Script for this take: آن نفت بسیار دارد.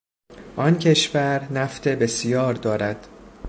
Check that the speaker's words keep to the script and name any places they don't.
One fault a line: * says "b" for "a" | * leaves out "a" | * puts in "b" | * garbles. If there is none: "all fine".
* puts in "کشور"